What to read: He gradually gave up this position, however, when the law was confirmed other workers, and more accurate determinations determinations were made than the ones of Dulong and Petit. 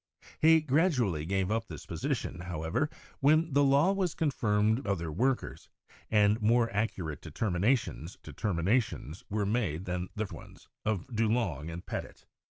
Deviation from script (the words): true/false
false